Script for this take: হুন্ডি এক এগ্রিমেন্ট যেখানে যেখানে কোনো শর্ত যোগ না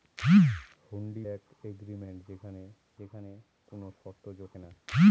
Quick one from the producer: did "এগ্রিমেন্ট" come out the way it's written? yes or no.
yes